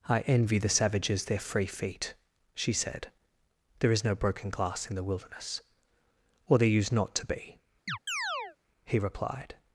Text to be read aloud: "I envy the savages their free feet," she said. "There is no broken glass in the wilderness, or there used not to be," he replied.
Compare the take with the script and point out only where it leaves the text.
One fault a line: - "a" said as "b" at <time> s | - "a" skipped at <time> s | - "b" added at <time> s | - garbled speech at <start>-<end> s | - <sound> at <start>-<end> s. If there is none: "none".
- chirp at 7.9-8.6 s